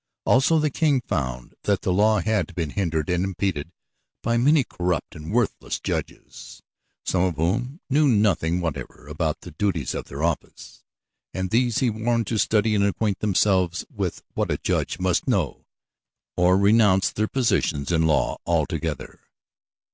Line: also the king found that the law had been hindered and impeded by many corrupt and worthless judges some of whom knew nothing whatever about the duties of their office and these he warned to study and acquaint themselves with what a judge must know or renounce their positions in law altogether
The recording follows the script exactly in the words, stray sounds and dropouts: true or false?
true